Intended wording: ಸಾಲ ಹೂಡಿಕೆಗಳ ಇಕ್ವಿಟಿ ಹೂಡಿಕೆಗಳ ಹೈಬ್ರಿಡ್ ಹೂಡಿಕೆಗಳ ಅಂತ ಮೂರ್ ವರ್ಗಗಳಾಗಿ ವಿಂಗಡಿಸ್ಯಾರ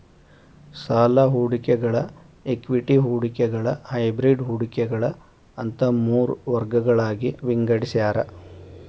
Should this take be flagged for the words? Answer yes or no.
no